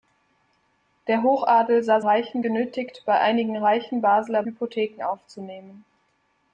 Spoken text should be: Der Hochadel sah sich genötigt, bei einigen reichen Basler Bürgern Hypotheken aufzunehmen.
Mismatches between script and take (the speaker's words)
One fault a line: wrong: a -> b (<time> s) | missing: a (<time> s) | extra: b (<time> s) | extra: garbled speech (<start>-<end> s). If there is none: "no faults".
wrong: sich -> reichen (2.0 s)
missing: Bürgern (4.4 s)